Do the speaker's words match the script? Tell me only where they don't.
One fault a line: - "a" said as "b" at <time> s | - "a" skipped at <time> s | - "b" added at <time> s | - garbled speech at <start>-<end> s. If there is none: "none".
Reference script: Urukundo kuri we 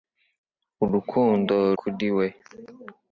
none